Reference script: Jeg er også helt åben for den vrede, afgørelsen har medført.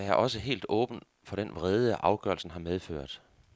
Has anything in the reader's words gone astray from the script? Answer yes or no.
no